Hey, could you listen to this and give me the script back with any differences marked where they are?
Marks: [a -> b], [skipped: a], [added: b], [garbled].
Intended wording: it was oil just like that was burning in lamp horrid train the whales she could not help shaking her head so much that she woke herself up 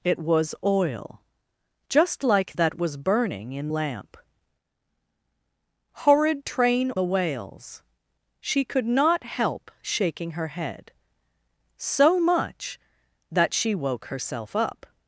it was oil just like that was burning in lamp horrid train the whales she could not help shaking her head so much that she woke herself up